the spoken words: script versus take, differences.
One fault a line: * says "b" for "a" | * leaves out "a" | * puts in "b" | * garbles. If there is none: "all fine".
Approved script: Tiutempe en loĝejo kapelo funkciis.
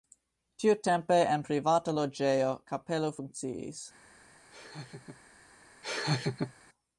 * puts in "privata"